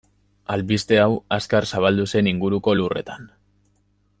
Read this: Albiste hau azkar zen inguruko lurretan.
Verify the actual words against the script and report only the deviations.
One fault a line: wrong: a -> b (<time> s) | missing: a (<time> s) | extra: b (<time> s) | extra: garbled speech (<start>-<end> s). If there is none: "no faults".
extra: zabaldu (1.7 s)